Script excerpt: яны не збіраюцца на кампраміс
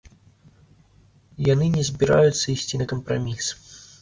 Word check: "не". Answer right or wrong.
right